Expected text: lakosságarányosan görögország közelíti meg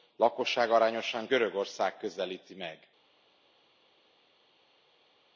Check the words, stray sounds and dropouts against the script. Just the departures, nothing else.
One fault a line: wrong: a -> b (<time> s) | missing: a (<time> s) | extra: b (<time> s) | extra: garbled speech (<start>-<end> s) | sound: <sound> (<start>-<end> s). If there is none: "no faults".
no faults